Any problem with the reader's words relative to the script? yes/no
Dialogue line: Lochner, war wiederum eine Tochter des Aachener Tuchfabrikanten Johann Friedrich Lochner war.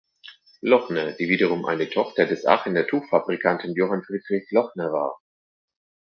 yes